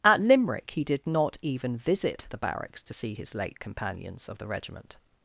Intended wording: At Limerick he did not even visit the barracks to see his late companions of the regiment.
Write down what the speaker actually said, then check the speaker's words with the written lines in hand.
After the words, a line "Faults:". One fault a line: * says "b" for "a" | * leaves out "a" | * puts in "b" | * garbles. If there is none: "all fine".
At Limerick he did not even visit the barracks to see his late companions of the regiment.
Faults:
all fine